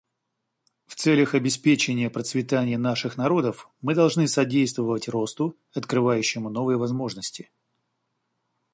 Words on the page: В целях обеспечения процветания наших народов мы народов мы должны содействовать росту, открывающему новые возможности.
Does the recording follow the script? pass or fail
fail